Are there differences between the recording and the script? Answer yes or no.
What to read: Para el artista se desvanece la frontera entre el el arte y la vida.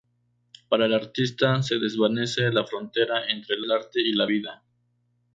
no